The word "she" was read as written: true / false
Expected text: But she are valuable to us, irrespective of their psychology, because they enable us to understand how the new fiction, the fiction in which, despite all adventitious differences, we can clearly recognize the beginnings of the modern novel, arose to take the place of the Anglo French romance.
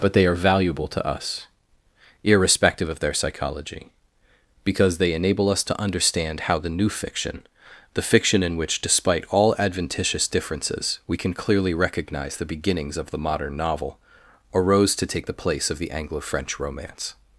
false